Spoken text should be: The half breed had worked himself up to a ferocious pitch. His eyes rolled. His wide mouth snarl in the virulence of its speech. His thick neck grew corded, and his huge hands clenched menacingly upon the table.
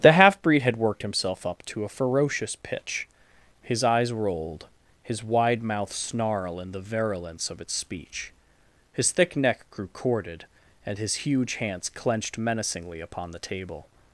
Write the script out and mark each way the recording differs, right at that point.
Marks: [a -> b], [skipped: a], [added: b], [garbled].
The half breed had worked himself up to a ferocious pitch. His eyes rolled. His wide mouth snarl in the virulence of its speech. His thick neck grew corded, and his huge hands clenched menacingly upon the table.